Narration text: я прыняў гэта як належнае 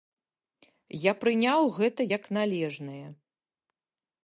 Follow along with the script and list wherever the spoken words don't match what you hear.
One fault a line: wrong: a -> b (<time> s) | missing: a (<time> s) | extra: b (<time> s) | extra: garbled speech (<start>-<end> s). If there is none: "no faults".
no faults